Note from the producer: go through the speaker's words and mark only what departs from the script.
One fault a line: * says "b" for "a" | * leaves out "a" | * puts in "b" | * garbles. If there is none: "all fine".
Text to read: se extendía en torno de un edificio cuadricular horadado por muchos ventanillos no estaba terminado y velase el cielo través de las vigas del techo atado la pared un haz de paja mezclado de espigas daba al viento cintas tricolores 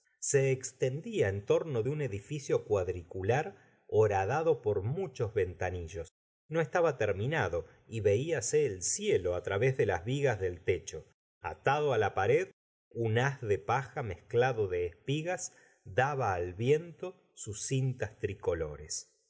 * puts in "sus"